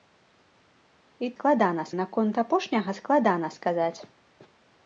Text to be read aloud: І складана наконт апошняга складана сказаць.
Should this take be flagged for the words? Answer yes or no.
no